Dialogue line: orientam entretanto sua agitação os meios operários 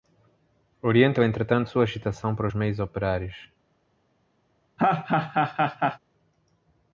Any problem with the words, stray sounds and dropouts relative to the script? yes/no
yes